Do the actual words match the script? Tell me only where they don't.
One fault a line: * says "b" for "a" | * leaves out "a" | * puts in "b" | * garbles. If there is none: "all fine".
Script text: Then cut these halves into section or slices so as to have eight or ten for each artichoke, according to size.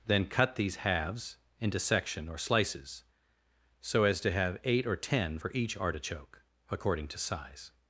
all fine